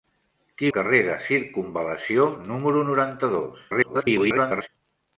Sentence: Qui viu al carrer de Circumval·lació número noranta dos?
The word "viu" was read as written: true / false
false